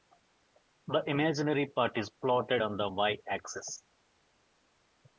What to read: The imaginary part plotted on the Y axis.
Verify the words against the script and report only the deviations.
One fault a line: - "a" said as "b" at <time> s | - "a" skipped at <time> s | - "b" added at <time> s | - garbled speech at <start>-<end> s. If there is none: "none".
- "is" added at 1.9 s